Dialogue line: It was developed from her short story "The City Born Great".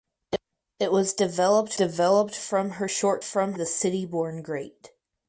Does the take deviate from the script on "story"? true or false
true